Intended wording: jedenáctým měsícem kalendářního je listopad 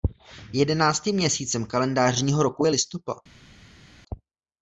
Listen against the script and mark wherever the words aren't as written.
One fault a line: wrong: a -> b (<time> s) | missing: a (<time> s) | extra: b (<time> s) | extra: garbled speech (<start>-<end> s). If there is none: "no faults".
extra: roku (2.4 s)